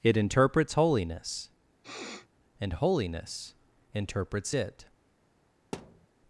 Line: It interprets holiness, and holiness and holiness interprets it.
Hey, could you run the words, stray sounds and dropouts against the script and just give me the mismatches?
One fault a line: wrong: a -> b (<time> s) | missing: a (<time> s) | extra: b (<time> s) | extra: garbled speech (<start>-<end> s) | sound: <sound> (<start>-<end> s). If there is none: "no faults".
sound: sniff (1.8-2.3 s)
missing: and holiness (3.5 s)
sound: thud (5.7-6.1 s)